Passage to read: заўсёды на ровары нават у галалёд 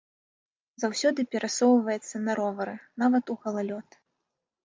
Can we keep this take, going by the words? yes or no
no